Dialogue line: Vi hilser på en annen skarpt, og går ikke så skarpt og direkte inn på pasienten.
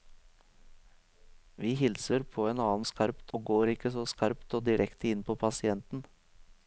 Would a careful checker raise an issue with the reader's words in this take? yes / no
no